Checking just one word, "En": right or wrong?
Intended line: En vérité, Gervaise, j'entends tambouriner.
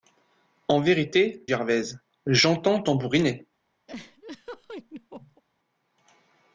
right